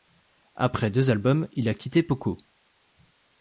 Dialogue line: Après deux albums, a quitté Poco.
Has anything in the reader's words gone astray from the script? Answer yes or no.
yes